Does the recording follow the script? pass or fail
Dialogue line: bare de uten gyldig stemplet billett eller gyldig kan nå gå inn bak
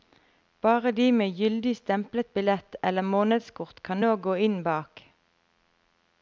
fail